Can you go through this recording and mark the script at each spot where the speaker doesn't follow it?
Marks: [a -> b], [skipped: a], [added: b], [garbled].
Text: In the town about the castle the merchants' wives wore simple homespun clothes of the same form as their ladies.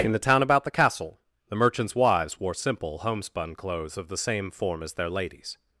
In the town about the castle the merchants' wives wore simple homespun clothes of the same form as their ladies.